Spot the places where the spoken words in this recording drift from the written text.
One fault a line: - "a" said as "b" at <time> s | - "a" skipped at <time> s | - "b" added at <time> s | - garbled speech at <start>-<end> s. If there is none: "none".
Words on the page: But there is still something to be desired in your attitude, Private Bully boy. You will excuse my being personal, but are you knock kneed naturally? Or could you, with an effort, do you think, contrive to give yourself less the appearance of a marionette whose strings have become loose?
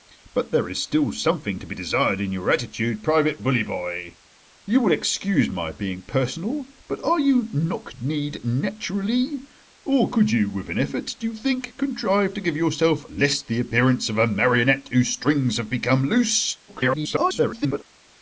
- garbled speech at 16.7-17.8 s